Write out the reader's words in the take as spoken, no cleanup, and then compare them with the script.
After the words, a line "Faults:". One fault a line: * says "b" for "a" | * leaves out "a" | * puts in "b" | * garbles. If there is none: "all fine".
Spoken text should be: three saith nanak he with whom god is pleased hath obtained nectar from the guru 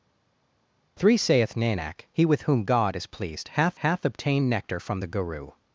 three saith nanak he with whom god is pleased hath hath obtained nectar from the guru
Faults:
* puts in "hath"